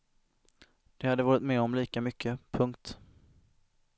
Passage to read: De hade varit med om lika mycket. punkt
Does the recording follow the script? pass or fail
pass